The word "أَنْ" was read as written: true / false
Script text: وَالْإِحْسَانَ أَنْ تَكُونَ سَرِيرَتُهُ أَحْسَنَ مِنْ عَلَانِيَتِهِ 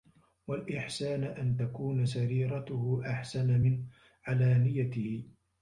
true